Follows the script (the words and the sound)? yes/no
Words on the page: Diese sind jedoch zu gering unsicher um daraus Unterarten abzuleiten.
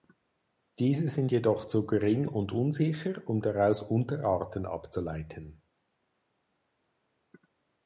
no